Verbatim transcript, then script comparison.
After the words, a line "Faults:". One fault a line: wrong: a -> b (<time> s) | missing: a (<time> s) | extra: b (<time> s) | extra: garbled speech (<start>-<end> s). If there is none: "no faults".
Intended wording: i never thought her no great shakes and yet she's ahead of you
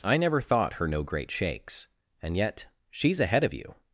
i never thought her no great shakes and yet she's ahead of you
Faults:
no faults